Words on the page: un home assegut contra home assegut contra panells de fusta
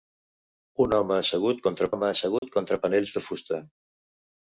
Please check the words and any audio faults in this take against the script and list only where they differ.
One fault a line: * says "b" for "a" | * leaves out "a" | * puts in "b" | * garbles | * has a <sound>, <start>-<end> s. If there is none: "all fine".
* has a dropout, 2.4-2.4 s